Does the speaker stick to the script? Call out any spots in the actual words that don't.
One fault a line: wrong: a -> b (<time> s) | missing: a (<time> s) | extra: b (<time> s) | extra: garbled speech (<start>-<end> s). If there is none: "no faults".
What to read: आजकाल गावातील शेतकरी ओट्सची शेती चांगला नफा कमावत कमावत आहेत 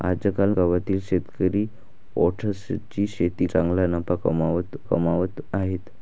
no faults